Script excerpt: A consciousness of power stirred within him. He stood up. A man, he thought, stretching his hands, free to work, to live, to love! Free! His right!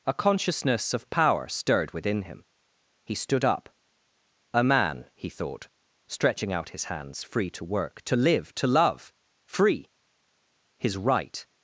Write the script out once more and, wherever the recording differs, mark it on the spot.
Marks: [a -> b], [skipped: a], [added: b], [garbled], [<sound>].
A consciousness of power stirred within him. He stood up. A man, he thought, stretching [added: out] his hands, free to work, to live, to love! Free! His right!